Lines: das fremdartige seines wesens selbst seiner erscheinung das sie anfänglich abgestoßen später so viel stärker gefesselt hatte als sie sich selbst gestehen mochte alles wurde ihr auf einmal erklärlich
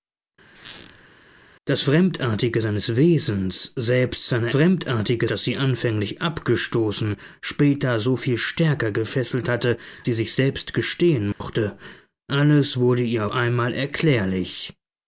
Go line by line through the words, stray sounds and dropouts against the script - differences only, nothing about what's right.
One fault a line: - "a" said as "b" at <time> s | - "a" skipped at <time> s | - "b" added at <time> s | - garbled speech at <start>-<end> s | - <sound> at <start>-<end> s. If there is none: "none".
- squeak at 0.5-1.1 s
- "erscheinung" said as "fremdartige" at 4.5 s
- "als" skipped at 9.8 s
- dropout at 11.3-11.4 s
- "auf" skipped at 13.3 s